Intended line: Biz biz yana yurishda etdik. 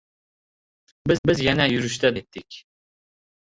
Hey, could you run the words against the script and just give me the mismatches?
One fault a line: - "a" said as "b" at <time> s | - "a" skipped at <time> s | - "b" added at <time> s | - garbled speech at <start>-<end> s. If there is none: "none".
none